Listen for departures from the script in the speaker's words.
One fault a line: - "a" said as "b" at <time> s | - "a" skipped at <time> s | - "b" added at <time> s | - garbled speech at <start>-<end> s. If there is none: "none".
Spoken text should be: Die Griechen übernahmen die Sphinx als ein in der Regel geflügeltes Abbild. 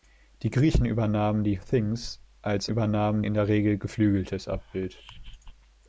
- "ein" said as "übernahmen" at 2.7 s